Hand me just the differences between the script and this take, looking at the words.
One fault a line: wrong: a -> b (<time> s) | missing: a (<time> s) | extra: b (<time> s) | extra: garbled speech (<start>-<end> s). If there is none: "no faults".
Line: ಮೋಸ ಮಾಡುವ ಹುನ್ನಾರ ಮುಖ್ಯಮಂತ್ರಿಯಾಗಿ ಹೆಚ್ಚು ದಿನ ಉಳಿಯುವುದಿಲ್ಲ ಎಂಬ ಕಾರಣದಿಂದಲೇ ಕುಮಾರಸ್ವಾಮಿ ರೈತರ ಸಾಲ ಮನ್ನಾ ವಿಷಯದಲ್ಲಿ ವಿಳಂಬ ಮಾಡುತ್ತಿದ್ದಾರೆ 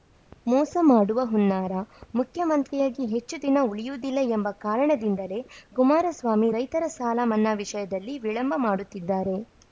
no faults